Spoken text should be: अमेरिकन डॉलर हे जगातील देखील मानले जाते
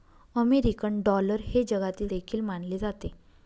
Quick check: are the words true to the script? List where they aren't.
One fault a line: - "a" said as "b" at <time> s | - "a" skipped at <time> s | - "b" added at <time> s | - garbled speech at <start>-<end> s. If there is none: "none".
none